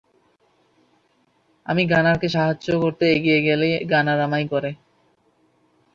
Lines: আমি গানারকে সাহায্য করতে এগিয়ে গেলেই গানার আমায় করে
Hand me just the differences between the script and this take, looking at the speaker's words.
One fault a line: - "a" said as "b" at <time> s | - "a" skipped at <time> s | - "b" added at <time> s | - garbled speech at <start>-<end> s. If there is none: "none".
none